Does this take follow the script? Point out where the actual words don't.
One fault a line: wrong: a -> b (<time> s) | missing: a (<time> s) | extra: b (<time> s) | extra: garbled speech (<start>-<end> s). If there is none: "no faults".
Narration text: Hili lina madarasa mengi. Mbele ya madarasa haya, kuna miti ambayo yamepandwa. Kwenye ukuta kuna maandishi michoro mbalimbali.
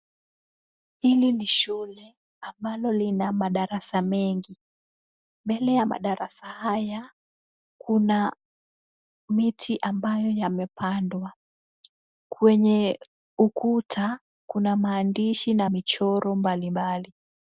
extra: ni shule ambalo (1.3 s)
extra: na (15.5 s)